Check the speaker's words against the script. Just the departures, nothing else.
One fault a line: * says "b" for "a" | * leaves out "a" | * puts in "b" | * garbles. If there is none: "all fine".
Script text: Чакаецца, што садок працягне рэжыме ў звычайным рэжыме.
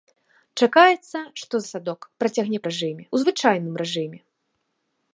all fine